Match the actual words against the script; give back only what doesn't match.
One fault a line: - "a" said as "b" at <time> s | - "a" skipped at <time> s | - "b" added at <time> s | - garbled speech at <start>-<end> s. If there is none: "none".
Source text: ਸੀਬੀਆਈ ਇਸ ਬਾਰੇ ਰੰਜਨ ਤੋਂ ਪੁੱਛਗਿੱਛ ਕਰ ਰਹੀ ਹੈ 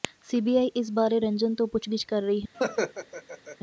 none